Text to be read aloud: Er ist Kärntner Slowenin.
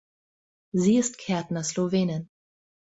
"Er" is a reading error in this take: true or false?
true